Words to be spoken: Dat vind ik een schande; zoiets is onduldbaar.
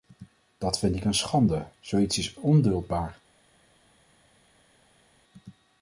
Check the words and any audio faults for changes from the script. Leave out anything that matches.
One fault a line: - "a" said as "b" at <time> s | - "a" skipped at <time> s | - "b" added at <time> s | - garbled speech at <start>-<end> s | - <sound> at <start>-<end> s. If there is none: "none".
none